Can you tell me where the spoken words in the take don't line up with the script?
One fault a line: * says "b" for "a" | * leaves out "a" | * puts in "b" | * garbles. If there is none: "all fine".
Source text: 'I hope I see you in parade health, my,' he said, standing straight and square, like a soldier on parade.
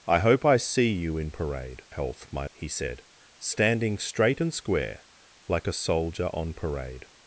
all fine